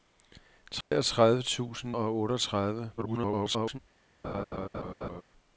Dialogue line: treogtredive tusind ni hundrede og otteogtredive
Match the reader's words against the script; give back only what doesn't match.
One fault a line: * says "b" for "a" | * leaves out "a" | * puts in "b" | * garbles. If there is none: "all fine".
* leaves out "ni hundrede"
* garbles